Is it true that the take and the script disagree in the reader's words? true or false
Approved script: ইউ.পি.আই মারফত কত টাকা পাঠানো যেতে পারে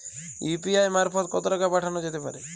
false